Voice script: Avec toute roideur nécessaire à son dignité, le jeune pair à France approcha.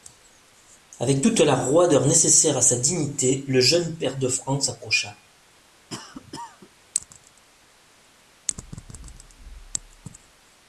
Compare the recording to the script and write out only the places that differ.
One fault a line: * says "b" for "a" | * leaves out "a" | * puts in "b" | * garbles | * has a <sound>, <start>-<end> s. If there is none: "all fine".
* puts in "la"
* says "sa" for "son"
* says "de" for "à"
* has a cough, 5.9-6.7 s